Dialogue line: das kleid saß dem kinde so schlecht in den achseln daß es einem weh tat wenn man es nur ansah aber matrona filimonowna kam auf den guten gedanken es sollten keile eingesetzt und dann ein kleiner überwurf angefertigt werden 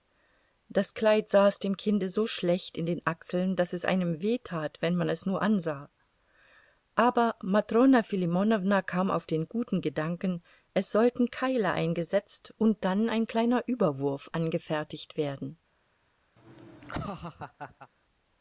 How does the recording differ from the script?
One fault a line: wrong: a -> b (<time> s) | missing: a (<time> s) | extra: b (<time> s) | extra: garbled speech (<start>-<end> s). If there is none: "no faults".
no faults